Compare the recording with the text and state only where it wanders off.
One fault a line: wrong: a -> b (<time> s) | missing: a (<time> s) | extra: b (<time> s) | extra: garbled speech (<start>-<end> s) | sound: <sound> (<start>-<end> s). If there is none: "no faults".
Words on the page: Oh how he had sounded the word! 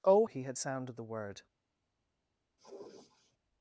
missing: how (0.2 s)
sound: sniff (2.6-3.4 s)